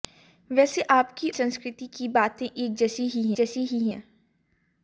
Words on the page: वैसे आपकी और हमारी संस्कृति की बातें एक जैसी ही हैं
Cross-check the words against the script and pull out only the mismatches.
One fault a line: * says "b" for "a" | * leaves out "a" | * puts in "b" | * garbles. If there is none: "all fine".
* leaves out "और हमारी"
* puts in "जैसी ही"